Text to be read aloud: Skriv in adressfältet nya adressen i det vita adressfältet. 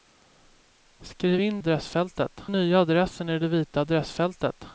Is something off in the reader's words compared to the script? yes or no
no